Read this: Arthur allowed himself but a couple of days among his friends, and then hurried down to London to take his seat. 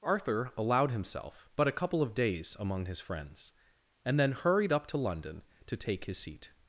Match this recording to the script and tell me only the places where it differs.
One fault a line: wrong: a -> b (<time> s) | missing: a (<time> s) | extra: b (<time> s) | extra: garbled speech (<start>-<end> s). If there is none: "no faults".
wrong: down -> up (4.7 s)